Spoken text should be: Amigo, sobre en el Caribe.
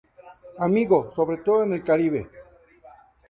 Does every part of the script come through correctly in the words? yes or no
no